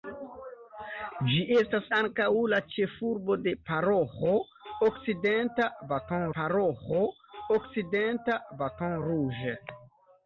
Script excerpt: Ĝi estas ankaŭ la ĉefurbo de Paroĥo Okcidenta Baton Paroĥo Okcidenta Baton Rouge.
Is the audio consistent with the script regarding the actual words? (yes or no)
yes